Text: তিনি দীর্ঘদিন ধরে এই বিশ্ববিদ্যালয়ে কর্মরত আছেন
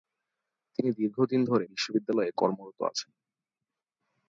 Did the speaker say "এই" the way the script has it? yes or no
no